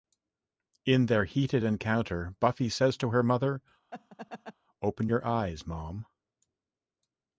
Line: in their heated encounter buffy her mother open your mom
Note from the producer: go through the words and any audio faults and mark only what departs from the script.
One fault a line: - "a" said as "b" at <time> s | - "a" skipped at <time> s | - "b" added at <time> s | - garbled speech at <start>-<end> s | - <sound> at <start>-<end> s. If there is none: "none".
- "says to" added at 2.7 s
- laugh at 3.9-4.5 s
- "eyes" added at 5.2 s